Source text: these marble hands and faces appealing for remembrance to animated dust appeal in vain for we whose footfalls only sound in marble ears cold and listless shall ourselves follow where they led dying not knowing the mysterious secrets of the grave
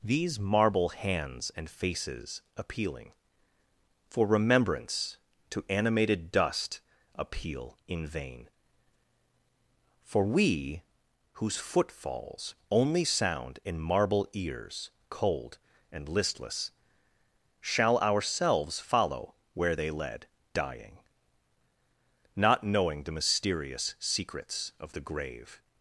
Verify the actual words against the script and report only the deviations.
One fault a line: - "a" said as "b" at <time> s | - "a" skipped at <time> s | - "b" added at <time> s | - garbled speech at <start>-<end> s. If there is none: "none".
none